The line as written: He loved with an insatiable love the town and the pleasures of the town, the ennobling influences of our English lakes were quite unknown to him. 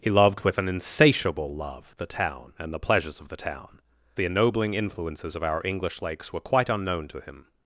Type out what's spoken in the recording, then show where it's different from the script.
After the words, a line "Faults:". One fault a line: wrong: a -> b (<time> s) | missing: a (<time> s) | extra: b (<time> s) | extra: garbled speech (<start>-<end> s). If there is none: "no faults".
He loved with an insatiable love the town and the pleasures of the town, the ennobling influences of our English lakes were quite unknown to him.
Faults:
no faults